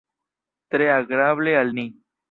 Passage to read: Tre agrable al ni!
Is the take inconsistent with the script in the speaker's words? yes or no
no